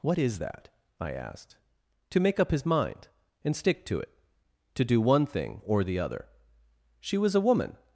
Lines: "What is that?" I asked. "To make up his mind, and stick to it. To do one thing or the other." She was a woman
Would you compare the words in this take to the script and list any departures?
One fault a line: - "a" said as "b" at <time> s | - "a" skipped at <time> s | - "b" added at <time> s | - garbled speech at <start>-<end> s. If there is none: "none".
none